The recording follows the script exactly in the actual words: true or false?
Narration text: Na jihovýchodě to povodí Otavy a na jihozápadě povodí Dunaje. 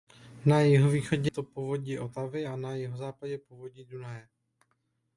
true